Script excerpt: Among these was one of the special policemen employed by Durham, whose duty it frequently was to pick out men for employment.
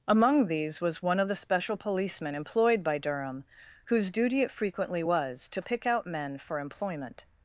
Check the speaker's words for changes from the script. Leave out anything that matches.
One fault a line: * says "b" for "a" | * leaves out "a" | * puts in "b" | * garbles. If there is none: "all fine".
all fine